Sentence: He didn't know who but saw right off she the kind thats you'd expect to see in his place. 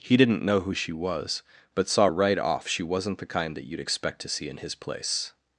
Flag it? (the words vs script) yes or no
yes